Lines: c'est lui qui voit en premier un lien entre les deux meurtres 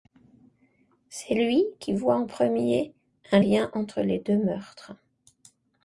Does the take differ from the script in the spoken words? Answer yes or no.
no